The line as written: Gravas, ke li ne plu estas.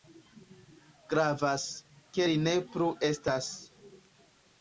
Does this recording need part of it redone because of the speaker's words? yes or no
no